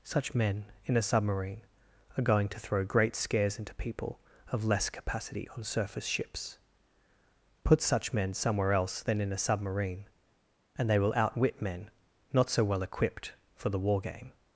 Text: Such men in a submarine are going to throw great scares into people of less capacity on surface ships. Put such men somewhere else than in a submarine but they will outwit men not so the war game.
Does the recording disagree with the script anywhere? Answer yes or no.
yes